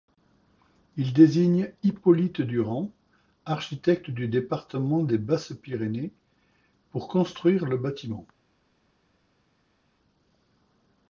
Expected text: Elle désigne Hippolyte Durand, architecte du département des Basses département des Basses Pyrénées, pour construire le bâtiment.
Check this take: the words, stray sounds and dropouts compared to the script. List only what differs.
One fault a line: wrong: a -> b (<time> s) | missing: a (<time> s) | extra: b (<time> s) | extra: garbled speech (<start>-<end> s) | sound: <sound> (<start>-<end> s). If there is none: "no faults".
wrong: Elle -> Il (1.0 s)
missing: département des Basses (5.5 s)